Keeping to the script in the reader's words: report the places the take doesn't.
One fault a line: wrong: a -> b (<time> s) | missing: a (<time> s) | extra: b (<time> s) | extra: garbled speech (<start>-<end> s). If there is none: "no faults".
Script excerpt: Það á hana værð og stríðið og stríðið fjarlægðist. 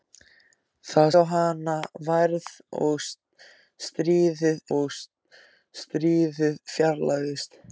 no faults